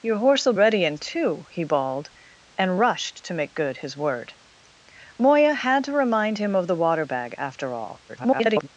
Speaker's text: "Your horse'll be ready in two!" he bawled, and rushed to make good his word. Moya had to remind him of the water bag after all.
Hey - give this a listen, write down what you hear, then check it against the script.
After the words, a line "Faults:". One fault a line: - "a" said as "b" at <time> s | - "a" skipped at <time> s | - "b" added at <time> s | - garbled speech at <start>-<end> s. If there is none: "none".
"Your horse'll ready in two!" he bawled, and rushed to make good his word. Moya had to remind him of the water bag after all. [garbled]
Faults:
- "be" skipped at 0.5 s
- garbled speech at 8.1-8.7 s